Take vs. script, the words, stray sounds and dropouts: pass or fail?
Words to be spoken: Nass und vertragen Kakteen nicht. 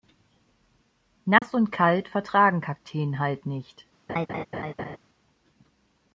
fail